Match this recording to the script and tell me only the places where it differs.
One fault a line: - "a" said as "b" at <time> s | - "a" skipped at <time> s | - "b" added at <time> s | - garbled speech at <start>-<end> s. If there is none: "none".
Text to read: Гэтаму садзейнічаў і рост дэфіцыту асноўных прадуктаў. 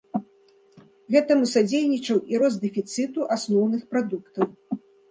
none